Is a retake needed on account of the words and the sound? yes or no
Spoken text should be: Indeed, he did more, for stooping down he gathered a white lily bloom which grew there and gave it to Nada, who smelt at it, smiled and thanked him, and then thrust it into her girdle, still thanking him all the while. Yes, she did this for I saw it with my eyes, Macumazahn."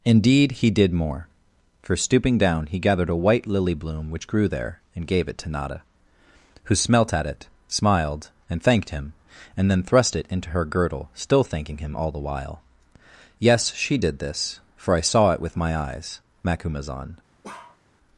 yes